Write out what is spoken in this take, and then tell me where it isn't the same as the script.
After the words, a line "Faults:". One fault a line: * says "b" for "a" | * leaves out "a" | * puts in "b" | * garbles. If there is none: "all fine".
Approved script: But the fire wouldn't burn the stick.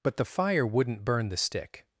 But the fire wouldn't burn the stick.
Faults:
all fine